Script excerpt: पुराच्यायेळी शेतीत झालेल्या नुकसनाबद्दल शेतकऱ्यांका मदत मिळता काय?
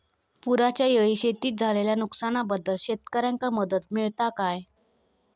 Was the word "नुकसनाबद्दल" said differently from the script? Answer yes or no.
no